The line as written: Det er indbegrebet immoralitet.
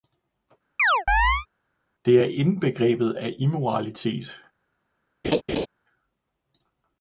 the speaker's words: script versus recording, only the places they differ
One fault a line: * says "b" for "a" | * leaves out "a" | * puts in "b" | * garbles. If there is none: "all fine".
* puts in "af"